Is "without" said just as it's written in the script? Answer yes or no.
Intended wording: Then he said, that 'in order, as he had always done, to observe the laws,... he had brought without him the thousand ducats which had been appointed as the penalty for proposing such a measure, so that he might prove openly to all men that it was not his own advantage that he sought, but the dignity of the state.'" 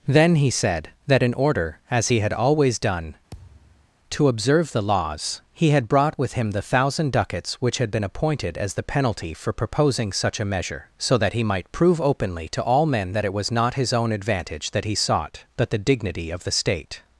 no